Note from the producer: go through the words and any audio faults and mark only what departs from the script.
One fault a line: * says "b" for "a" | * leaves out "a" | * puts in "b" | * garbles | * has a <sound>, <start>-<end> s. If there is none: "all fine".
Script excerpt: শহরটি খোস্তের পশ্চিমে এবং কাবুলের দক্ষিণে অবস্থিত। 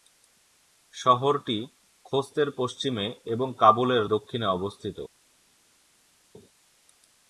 all fine